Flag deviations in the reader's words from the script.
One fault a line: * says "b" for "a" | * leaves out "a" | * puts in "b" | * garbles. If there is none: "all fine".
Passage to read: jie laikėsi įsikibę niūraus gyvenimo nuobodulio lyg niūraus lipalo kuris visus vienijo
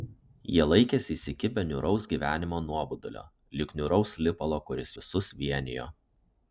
all fine